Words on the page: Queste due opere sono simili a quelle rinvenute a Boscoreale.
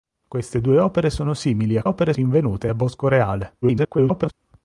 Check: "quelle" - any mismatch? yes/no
yes